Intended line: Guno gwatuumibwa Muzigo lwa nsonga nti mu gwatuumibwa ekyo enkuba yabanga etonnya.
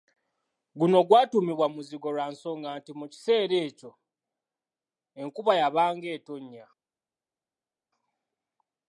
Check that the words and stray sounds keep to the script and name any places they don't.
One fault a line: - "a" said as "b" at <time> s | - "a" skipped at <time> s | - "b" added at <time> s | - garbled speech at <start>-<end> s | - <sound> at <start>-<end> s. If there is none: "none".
- "gwatuumibwa" said as "kiseera" at 3.1 s